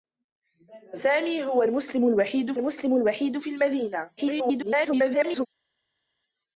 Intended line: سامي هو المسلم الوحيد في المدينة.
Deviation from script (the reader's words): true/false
true